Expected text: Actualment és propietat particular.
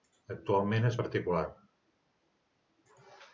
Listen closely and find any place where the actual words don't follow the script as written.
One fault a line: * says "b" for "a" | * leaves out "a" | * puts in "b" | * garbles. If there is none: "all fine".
* leaves out "propietat"